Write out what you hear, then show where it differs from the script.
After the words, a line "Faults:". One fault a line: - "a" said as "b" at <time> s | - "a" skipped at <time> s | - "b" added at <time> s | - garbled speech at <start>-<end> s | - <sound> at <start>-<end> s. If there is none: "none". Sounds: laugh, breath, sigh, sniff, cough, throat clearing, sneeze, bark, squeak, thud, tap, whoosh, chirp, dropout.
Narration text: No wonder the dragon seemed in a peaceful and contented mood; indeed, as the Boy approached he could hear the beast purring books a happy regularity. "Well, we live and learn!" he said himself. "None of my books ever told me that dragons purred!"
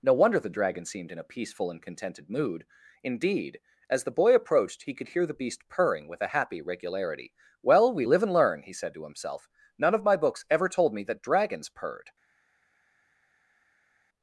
No wonder the dragon seemed in a peaceful and contented mood; indeed, as the Boy approached he could hear the beast purring with a happy regularity. "Well, we live and learn!" he said to himself. "None of my books ever told me that dragons purred!"
Faults:
- "books" said as "with" at 6.1 s
- "to" added at 8.9 s